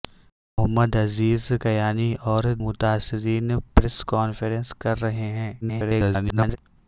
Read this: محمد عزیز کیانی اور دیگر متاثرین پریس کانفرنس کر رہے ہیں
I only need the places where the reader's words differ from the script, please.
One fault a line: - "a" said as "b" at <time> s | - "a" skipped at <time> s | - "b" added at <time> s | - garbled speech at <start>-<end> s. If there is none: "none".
- "دیگر" skipped at 2.4 s
- garbled speech at 5.6-6.6 s